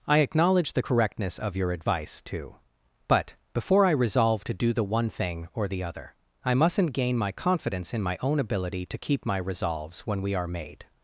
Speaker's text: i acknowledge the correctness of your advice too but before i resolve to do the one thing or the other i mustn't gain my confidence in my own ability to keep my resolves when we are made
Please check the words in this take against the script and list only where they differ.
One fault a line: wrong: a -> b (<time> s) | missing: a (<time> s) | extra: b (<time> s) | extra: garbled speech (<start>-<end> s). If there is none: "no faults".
no faults